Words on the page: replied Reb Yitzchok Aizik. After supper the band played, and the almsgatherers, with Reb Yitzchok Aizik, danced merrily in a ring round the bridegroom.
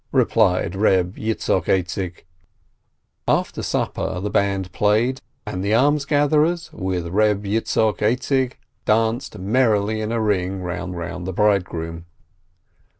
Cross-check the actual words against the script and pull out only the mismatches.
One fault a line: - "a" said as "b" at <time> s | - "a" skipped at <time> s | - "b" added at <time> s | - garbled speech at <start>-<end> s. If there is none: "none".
- "round" added at 10.9 s